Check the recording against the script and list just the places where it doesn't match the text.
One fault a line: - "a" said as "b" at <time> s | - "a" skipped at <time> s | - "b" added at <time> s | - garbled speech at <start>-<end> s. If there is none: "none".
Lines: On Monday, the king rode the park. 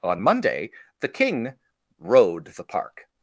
none